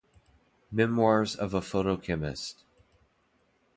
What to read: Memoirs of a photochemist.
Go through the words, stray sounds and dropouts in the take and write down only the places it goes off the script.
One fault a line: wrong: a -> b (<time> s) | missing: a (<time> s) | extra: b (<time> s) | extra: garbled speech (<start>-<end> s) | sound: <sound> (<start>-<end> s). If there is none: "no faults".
no faults